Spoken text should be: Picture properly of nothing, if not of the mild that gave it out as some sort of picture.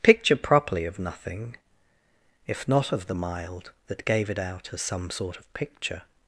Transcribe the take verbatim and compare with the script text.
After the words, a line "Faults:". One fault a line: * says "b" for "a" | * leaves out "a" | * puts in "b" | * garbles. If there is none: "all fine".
Picture properly of nothing, if not of the mild that gave it out as some sort of picture.
Faults:
all fine